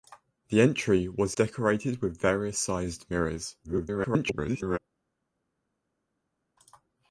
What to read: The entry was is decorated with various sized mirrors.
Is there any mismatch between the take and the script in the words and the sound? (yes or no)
yes